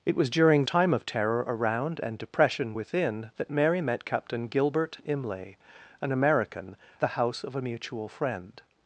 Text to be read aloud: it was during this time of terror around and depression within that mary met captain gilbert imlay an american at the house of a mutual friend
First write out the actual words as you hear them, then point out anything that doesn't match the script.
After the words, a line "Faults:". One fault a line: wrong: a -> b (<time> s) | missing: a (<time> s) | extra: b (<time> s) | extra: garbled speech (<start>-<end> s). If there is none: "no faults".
it was during time of terror around and depression within that mary met captain gilbert imlay an american the house of a mutual friend
Faults:
missing: this (0.7 s)
missing: at (6.8 s)